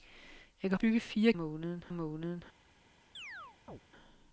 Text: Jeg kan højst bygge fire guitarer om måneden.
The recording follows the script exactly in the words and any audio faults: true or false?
false